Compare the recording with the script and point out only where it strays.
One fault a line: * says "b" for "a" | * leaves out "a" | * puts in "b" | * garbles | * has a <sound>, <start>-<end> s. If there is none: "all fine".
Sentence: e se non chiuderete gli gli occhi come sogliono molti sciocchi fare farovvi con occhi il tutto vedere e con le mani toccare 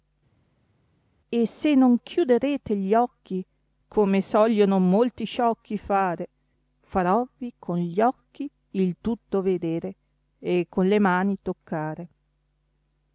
* leaves out "gli"
* puts in "gli"